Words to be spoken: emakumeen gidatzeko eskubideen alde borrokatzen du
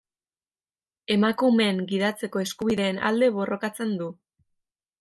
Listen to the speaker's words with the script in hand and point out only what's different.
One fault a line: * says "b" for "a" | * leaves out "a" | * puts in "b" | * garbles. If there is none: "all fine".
all fine